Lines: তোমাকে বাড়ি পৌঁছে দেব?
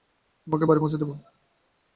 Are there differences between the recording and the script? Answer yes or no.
no